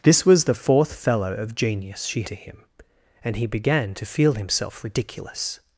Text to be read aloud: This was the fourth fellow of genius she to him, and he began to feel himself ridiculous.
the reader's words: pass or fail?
pass